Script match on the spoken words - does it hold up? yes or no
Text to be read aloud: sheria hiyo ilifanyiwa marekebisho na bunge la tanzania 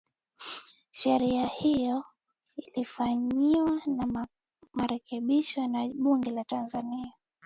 yes